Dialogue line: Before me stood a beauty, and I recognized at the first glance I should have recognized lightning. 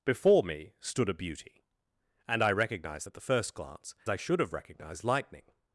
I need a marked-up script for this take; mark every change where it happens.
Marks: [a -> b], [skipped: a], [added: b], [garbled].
Before me stood a beauty, and I recognized at the first glance I should have recognized lightning.